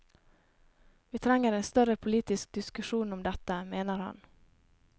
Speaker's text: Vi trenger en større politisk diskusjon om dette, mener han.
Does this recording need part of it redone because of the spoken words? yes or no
no